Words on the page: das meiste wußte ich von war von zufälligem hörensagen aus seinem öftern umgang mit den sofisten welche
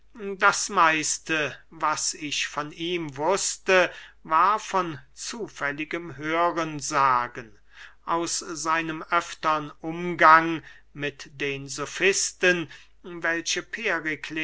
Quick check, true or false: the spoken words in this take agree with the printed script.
false